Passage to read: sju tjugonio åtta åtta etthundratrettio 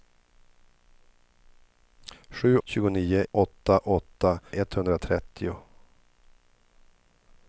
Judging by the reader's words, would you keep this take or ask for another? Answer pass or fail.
pass